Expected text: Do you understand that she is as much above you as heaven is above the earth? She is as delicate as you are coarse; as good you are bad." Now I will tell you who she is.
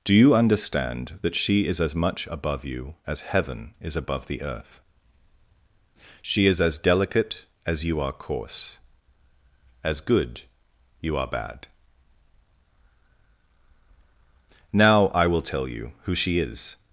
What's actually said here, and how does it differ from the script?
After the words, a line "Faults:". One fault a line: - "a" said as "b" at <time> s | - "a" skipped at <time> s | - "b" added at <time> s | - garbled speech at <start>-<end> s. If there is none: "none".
Do you understand that she is as much above you as heaven is above the earth? She is as delicate as you are coarse; as good you are bad." Now I will tell you who she is.
Faults:
none